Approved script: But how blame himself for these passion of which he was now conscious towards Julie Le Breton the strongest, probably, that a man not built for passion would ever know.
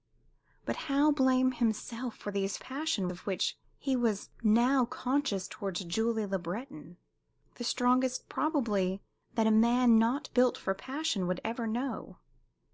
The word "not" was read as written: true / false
true